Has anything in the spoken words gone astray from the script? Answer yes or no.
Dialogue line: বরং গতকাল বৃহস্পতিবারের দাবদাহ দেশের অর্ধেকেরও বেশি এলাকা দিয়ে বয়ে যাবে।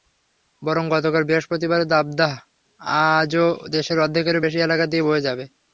yes